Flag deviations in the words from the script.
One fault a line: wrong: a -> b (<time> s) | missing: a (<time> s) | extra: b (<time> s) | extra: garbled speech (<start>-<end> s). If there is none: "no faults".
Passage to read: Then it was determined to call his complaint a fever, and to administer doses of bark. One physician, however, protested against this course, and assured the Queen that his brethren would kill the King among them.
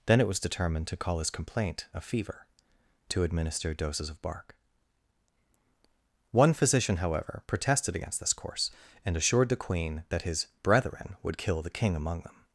missing: and (2.5 s)